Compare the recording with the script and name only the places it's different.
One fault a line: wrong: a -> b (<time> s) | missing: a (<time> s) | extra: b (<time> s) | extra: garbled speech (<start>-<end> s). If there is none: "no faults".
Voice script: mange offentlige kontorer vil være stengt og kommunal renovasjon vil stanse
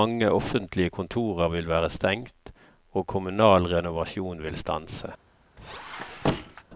no faults